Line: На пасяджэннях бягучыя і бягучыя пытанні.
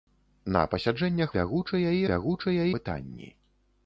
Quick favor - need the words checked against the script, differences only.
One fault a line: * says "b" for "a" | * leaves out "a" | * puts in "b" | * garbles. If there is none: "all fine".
all fine